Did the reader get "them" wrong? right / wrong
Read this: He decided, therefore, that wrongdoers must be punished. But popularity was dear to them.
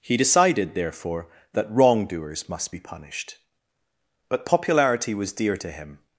wrong